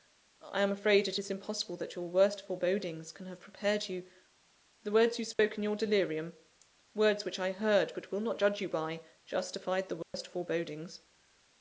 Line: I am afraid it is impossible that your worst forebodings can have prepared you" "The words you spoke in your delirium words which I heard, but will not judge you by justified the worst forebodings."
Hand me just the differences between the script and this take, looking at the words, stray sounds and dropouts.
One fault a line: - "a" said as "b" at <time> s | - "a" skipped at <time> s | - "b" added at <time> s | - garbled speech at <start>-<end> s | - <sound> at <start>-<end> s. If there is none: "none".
- dropout at 5.3-5.4 s
- dropout at 10.0-10.1 s